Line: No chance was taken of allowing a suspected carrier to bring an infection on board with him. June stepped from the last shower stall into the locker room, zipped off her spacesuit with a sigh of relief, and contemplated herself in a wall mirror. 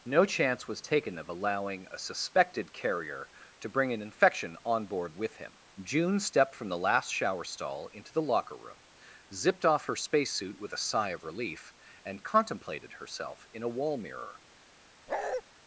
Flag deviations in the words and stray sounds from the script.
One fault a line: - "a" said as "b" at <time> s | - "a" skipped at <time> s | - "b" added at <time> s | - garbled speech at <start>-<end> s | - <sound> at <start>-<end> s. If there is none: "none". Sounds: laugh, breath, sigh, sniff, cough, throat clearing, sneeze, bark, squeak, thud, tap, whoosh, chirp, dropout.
- bark at 15.1-15.4 s